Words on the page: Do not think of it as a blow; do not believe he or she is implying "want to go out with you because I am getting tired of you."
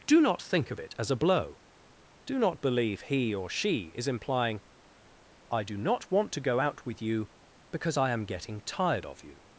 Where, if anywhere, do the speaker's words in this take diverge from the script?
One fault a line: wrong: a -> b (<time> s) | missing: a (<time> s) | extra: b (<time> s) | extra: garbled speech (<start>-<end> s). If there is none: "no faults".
extra: I do not (5.5 s)